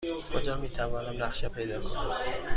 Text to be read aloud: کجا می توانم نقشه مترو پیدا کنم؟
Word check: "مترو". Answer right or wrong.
wrong